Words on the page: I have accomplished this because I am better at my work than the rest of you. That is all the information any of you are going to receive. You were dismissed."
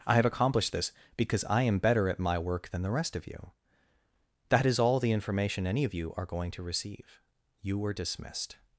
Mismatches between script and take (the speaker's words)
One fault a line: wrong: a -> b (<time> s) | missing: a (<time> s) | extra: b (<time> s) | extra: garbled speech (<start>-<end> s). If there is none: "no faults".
no faults